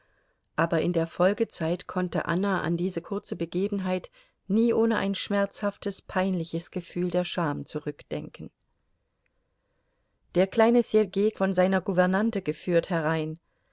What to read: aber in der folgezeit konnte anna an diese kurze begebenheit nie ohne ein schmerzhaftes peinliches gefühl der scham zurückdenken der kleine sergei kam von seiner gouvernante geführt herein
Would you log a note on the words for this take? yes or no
yes